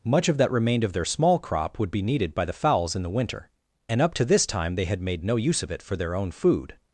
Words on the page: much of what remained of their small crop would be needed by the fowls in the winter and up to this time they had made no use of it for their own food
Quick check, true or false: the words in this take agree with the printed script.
false